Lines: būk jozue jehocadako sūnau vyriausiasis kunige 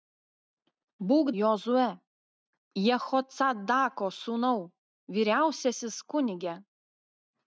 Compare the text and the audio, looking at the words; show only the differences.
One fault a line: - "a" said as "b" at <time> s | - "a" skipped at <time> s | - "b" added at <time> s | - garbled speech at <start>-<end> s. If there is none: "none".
none